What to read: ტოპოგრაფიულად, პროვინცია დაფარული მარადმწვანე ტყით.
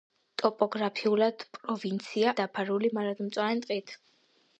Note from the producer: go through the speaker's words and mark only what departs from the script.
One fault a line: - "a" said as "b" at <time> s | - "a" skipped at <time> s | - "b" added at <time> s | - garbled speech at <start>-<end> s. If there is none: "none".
none